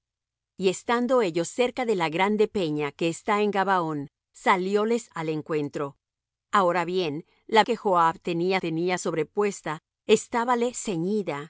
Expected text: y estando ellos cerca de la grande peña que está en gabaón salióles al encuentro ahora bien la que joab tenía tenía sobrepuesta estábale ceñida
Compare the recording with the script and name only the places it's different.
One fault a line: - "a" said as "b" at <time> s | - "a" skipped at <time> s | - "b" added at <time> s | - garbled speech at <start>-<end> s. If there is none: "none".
none